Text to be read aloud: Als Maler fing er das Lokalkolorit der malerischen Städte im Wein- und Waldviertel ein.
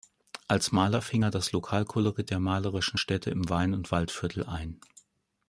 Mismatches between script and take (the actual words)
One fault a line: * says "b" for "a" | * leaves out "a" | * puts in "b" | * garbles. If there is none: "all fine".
all fine